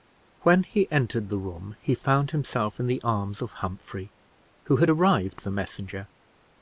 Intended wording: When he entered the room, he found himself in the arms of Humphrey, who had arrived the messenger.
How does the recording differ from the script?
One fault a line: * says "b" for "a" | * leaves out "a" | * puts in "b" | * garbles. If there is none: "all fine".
all fine